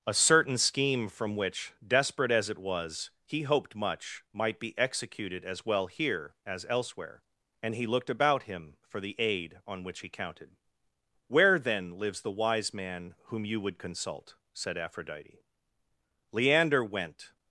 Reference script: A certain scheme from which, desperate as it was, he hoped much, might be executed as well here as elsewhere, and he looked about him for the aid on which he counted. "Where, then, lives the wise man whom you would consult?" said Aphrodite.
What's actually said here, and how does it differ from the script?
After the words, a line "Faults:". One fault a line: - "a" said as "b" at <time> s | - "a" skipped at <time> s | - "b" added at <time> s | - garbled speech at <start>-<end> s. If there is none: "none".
A certain scheme from which, desperate as it was, he hoped much, might be executed as well here as elsewhere, and he looked about him for the aid on which he counted. "Where, then, lives the wise man whom you would consult?" said Aphrodite. Leander went
Faults:
- "Leander went" added at 16.3 s